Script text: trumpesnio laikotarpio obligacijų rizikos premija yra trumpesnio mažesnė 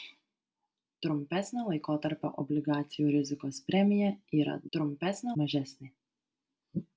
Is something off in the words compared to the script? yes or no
no